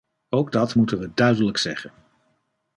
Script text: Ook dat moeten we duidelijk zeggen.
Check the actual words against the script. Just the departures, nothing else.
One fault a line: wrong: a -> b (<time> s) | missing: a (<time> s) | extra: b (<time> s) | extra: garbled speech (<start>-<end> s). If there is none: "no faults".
no faults